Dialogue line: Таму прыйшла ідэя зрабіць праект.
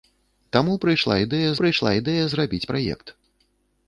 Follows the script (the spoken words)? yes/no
no